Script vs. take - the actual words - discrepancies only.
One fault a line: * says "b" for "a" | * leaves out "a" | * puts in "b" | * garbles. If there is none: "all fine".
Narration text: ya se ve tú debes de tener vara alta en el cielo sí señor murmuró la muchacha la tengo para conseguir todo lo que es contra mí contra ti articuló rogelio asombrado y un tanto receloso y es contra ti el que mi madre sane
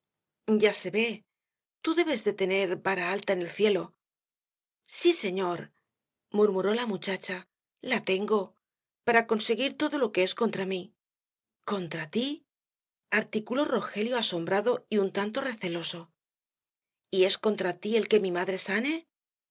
all fine